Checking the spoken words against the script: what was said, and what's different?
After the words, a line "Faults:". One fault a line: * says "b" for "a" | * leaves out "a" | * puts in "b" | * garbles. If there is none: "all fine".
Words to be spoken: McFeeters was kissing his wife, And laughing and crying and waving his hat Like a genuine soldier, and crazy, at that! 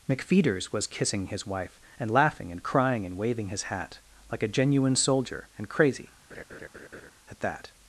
McFeeters was kissing his wife, And laughing and crying and waving his hat Like a genuine soldier, and crazy, at that!
Faults:
all fine